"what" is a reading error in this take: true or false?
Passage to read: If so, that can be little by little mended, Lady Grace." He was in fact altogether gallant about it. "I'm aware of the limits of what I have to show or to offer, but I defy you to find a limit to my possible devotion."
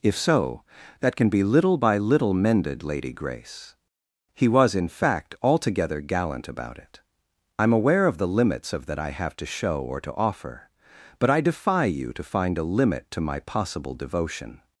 true